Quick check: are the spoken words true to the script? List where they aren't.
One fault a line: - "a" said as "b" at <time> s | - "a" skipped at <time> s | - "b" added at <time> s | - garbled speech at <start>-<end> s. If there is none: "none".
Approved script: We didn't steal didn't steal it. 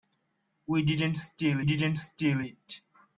none